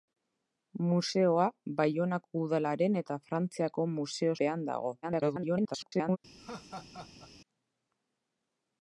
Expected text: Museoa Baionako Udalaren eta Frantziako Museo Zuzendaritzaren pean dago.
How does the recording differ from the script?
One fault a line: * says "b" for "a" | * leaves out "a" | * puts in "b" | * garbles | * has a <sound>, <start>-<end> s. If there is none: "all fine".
* leaves out "Zuzendaritzaren"
* garbles
* has a laugh, 6.4-7.3 s